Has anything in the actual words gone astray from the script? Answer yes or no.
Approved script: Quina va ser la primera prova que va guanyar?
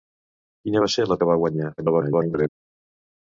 yes